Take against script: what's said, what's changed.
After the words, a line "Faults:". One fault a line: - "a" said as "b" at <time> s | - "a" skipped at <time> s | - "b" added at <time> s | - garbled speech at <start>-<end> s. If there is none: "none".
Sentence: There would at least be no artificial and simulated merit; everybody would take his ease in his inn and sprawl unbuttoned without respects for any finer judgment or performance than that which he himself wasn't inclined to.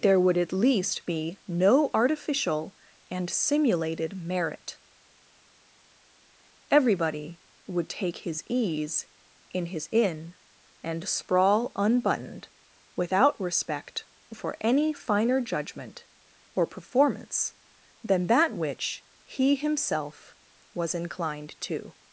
There would at least be no artificial and simulated merit; everybody would take his ease in his inn and sprawl unbuttoned without respect for any finer judgment or performance than that which he himself was inclined to.
Faults:
- "respects" said as "respect" at 13.4 s
- "wasn't" said as "was" at 20.8 s